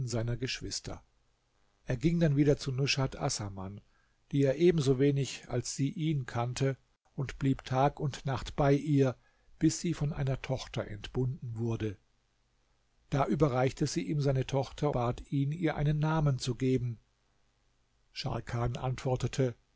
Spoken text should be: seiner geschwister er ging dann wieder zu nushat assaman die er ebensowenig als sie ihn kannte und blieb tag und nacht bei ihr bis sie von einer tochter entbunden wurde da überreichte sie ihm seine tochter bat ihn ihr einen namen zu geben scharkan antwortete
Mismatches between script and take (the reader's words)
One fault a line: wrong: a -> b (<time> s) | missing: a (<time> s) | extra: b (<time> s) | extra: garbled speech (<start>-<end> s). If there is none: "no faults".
no faults